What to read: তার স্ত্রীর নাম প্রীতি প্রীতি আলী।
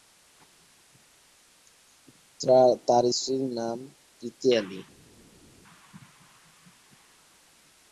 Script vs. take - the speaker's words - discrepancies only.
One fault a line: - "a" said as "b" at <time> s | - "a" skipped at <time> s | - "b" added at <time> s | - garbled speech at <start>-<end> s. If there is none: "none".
- "প্রীতি" skipped at 4.5 s